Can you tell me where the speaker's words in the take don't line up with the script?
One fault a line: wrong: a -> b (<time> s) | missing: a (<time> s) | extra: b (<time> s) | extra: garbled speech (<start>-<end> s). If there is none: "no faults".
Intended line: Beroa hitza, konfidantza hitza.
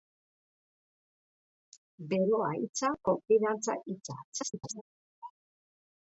extra: garbled speech (4.3-4.8 s)